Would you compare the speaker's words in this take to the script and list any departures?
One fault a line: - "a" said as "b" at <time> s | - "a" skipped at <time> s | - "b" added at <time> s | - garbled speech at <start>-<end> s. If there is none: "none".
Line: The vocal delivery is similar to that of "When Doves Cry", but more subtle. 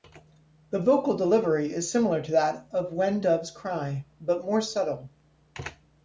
none